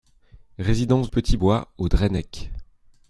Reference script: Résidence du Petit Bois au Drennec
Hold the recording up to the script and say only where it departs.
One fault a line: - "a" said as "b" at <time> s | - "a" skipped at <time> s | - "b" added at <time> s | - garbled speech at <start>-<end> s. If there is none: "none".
- "du" skipped at 1.1 s